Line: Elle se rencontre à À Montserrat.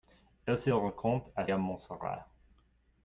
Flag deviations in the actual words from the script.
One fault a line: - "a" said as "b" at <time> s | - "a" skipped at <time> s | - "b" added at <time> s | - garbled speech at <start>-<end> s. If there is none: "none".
none